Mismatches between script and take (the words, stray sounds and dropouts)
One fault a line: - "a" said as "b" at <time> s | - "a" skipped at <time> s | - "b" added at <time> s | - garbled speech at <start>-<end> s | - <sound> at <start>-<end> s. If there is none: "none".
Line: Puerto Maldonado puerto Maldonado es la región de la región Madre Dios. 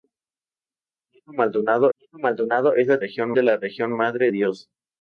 none